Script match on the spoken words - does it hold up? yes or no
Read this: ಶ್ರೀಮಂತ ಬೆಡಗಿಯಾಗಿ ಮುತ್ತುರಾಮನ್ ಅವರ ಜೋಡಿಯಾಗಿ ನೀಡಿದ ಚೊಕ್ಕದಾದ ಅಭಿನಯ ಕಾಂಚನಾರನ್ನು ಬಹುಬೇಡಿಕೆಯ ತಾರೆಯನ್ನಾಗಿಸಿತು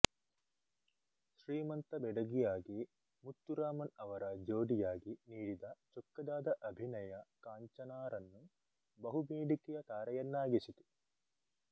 yes